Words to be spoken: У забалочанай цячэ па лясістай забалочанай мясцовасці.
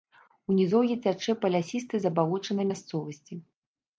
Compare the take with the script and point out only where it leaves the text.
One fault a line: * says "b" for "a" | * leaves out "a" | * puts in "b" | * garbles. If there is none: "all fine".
* says "нізоўі" for "забалочанай"